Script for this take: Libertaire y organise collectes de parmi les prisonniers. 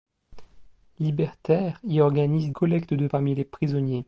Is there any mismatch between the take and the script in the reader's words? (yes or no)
no